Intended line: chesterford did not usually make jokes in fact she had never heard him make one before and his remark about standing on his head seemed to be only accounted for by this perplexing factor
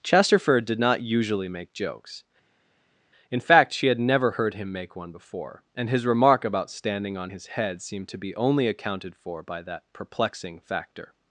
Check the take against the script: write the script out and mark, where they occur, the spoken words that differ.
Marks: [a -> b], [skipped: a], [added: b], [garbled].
chesterford did not usually make jokes in fact she had never heard him make one before and his remark about standing on his head seemed to be only accounted for by [this -> that] perplexing factor